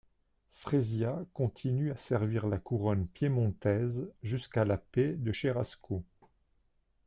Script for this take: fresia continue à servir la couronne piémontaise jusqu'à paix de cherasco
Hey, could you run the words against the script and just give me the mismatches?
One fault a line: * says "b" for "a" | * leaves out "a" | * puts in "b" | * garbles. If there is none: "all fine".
* puts in "la"